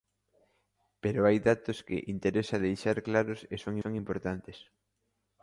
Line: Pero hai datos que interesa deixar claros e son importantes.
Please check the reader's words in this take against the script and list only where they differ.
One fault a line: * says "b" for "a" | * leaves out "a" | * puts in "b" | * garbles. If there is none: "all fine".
* puts in "son"